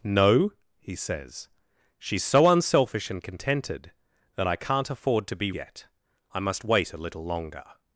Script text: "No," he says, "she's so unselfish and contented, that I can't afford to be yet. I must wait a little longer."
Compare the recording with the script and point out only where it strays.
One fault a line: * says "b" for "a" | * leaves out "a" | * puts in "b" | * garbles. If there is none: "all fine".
all fine